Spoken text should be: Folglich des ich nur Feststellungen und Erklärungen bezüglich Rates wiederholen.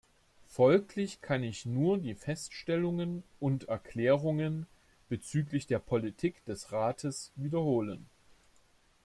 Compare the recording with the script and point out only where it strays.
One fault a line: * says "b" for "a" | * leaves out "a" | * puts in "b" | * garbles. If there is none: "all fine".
* says "kann" for "des"
* puts in "die"
* puts in "der Politik des"